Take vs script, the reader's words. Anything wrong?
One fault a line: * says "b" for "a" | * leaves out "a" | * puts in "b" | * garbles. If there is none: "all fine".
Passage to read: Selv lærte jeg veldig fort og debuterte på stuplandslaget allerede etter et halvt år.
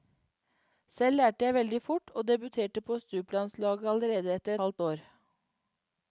* leaves out "et"